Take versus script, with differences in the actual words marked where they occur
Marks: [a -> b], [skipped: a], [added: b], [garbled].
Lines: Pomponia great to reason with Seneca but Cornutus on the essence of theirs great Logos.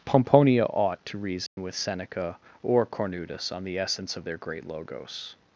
Pomponia [great -> ought] to reason with Seneca [but -> or] Cornutus on the essence of [theirs -> their] great Logos.